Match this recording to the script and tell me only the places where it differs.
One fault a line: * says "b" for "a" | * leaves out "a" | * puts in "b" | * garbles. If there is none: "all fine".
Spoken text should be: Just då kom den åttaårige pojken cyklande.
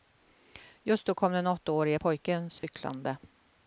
all fine